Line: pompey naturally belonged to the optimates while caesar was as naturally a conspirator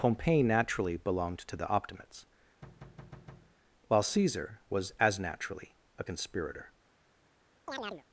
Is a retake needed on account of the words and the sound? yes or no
yes